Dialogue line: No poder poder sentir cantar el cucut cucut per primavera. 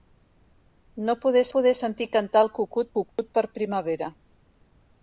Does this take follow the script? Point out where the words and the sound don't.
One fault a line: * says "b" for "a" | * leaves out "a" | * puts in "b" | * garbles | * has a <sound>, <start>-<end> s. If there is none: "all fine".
* has a dropout, 3.1-3.2 s